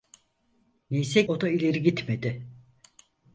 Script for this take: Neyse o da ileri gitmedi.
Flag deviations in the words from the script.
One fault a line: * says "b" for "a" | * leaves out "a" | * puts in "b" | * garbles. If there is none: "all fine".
all fine